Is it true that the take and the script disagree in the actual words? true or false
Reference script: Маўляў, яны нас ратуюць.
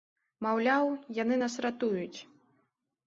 false